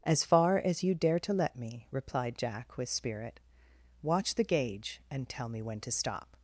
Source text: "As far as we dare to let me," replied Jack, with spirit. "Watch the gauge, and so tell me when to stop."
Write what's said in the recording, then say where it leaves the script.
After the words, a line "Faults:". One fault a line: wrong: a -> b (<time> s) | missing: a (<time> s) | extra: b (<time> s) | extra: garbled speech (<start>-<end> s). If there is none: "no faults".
"As far as you dare to let me," replied Jack, with spirit. "Watch the gauge, and tell me when to stop."
Faults:
wrong: we -> you (0.8 s)
missing: so (5.3 s)